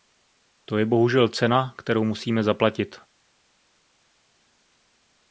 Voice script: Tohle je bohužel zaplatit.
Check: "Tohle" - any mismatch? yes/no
yes